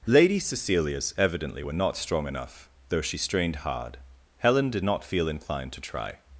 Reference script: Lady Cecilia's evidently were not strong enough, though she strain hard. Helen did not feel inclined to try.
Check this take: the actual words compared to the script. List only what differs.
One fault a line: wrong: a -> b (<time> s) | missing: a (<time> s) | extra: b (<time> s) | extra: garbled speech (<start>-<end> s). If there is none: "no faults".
wrong: strain -> strained (3.2 s)